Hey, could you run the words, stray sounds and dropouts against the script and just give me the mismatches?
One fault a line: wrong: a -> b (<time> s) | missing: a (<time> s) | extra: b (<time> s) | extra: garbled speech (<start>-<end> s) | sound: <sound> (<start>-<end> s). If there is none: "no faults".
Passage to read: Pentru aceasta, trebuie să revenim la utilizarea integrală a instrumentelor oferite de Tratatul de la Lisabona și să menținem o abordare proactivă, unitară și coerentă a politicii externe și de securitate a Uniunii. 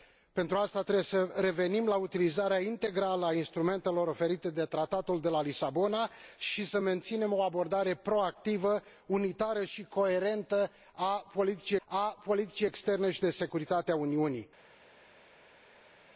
extra: a politicii (11.8 s)